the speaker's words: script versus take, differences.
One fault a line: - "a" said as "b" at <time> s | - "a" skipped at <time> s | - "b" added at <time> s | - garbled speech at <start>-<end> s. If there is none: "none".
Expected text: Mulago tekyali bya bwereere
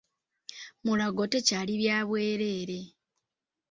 none